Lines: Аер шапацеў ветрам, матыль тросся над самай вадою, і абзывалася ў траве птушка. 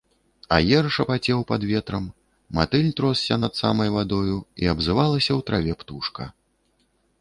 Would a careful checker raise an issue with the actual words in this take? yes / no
yes